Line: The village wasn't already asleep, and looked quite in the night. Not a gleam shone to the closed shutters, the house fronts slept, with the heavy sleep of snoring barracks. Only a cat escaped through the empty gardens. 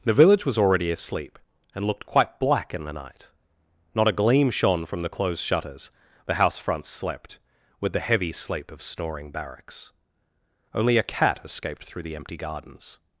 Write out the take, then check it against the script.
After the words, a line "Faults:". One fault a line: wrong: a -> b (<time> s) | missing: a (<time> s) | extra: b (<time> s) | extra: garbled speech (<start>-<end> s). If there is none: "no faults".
The village was already asleep, and looked quite black in the night. Not a gleam shone from the closed shutters, the house fronts slept, with the heavy sleep of snoring barracks. Only a cat escaped through the empty gardens.
Faults:
wrong: wasn't -> was (0.5 s)
extra: black (2.4 s)
wrong: to -> from (4.8 s)